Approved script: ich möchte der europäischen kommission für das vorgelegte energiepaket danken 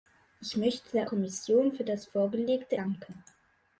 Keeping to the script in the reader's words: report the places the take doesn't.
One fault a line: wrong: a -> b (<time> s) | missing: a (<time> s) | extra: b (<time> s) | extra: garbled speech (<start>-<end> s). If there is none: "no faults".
missing: europäischen (1.1 s)
missing: energiepaket (2.8 s)